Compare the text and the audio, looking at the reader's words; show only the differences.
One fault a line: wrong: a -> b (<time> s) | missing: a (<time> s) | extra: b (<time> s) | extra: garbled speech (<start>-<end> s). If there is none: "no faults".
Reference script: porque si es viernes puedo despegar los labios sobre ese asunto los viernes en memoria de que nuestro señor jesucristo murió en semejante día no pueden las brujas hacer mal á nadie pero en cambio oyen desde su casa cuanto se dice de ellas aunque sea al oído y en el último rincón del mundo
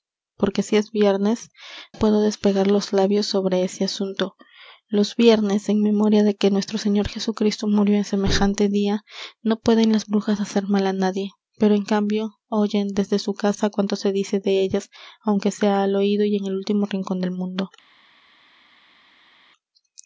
no faults